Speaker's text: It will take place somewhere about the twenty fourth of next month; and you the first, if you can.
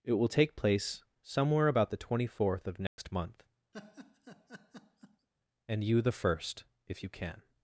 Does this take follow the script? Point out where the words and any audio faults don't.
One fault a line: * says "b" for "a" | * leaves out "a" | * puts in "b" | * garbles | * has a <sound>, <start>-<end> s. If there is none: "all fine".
* has a dropout, 2.9-3.0 s
* has a laugh, 3.7-5.3 s